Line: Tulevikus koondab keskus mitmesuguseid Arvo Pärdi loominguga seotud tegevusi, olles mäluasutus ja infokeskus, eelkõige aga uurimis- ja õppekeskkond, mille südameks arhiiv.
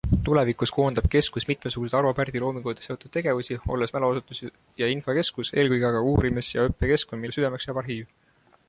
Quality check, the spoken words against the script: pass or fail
fail